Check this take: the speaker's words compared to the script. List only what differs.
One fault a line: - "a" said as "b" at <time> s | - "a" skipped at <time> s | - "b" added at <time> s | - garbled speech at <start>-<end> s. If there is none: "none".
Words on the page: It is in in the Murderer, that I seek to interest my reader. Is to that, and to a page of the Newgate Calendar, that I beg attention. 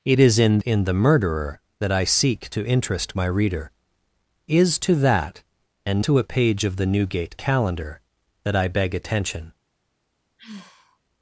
none